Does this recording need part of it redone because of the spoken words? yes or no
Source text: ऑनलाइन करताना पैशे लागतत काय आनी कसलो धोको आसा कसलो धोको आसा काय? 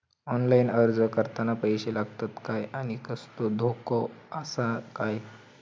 yes